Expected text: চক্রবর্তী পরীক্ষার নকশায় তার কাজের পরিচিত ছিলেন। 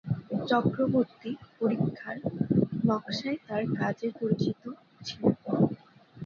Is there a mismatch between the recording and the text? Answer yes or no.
no